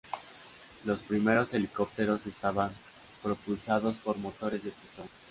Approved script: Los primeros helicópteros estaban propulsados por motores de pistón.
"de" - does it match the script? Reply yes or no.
yes